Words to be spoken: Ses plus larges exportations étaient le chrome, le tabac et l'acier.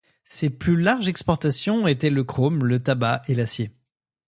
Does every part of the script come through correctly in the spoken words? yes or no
yes